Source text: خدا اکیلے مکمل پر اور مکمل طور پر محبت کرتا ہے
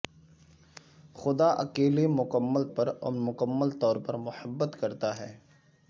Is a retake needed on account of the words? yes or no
no